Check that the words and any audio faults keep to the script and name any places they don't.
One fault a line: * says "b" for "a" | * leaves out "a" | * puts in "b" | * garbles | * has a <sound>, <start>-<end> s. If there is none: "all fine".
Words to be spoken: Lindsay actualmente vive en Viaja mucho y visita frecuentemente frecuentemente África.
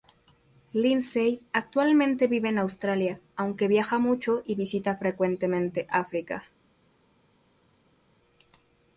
* puts in "Australia aunque"
* leaves out "frecuentemente"